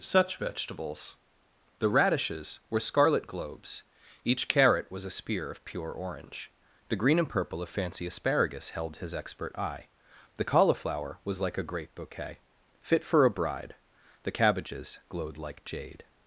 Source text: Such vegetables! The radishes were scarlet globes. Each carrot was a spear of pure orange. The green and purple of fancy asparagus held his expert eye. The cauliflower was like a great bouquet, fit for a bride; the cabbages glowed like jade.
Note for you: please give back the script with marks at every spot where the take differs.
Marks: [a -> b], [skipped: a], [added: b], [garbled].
Such vegetables! The radishes were scarlet globes. Each carrot was a spear of pure orange. The green and purple of fancy asparagus held his expert eye. The cauliflower was like a great bouquet, fit for a bride; the cabbages glowed like jade.